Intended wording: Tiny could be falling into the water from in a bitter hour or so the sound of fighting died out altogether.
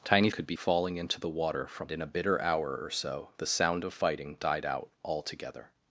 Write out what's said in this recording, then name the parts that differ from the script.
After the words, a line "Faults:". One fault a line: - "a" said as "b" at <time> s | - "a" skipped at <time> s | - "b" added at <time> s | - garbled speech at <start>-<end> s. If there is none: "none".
Tiny could be falling into the water from in a bitter hour or so the sound of fighting died out altogether.
Faults:
none